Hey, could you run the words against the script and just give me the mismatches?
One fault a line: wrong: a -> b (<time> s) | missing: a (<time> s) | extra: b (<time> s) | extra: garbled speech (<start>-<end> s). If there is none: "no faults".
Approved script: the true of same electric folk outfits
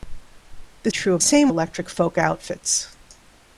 no faults